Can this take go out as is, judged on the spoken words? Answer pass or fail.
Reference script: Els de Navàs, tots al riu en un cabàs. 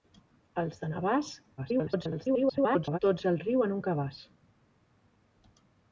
fail